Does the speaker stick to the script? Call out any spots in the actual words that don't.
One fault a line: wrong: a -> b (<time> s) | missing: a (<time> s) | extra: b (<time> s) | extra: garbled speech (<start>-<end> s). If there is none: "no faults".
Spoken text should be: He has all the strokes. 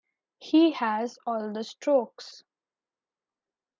no faults